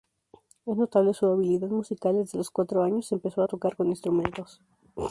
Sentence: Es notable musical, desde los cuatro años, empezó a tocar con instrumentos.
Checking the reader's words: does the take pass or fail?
fail